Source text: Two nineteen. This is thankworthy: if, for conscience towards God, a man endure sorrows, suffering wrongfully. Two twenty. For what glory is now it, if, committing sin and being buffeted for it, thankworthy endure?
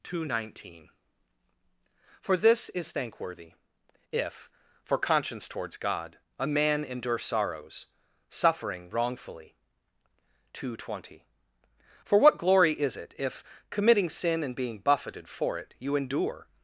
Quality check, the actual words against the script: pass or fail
fail